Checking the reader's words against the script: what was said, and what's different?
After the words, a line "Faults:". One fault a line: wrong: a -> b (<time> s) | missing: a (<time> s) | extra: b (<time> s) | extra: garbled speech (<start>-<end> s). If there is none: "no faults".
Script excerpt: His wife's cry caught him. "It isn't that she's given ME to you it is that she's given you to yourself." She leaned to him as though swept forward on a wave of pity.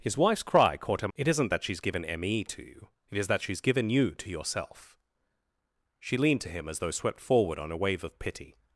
His wife's cry caught him. "It isn't that she's given ME to you it is that she's given you to yourself." She leaned to him as though swept forward on a wave of pity.
Faults:
no faults